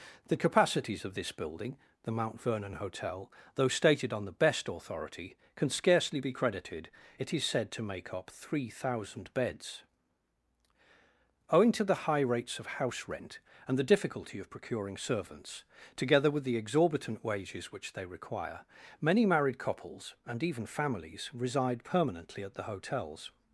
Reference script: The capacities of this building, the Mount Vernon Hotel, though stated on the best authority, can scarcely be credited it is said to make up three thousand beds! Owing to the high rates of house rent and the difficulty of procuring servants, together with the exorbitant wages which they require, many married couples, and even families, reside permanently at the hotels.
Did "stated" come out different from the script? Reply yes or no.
no